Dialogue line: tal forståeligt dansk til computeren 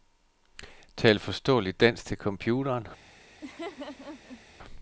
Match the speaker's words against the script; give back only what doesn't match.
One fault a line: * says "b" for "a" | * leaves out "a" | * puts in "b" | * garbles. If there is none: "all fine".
all fine